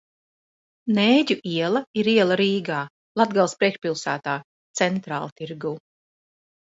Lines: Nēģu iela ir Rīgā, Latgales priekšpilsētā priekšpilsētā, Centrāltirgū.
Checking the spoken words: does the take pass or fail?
fail